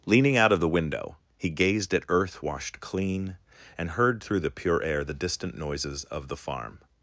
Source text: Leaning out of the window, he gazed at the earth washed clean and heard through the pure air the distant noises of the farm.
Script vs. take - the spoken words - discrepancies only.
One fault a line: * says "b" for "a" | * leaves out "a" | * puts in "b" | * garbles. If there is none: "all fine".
* leaves out "the"